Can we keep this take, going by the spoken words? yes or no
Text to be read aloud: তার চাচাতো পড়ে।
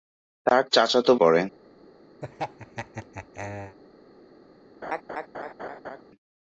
yes